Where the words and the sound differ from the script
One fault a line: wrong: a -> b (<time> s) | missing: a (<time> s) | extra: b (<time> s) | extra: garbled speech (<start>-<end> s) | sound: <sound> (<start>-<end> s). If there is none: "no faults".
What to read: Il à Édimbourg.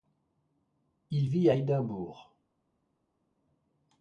extra: vit (1.3 s)